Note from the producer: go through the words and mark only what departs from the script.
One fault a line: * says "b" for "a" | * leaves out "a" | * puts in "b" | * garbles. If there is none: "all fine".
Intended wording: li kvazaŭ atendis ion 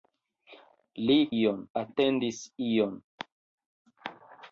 * says "ion" for "kvazaŭ"